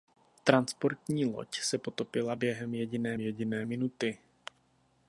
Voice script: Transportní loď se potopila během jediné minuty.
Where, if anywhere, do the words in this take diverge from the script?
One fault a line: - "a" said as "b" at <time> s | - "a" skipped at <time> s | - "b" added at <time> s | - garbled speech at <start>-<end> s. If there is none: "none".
- "jediné" added at 3.2 s